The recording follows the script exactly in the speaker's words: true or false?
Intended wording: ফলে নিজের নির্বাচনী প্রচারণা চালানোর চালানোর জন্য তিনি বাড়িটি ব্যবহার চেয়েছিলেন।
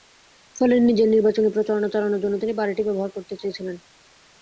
false